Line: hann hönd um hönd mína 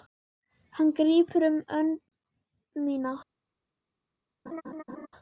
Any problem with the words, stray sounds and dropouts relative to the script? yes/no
yes